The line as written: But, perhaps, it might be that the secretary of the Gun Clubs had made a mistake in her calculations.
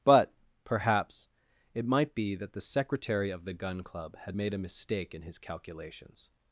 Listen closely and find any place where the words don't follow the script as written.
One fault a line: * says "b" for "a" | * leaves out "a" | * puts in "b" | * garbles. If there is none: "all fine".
* says "Club" for "Clubs"
* says "his" for "her"